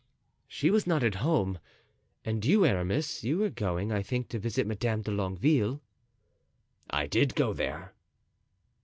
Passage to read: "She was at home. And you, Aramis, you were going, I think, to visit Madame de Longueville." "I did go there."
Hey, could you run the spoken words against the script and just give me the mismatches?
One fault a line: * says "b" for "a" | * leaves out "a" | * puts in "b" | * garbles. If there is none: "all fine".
* puts in "not"